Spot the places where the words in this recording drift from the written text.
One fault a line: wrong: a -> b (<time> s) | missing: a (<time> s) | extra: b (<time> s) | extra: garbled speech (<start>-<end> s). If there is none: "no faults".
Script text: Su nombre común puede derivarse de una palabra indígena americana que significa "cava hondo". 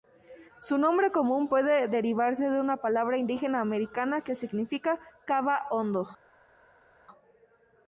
no faults